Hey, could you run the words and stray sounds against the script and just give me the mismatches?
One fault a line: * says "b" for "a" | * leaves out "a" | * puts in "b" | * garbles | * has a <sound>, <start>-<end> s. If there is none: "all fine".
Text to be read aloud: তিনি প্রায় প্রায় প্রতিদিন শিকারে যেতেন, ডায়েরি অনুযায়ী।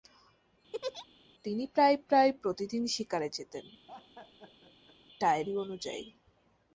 * has a laugh, 0.7-1.1 s
* has a laugh, 3.9-5.0 s